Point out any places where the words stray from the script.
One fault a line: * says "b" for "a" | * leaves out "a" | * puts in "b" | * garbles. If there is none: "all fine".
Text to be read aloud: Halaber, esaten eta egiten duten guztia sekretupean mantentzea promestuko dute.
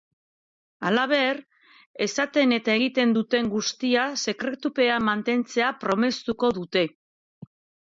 all fine